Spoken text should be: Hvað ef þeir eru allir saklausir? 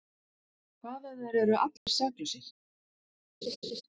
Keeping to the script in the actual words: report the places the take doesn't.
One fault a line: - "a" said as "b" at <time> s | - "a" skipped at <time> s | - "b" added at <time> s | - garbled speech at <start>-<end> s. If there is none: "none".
none